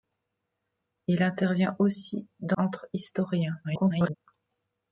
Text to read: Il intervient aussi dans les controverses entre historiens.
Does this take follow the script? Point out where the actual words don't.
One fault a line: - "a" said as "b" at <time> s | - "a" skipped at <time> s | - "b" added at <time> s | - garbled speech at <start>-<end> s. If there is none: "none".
- "les controverses" skipped at 2.6 s
- garbled speech at 3.6-4.2 s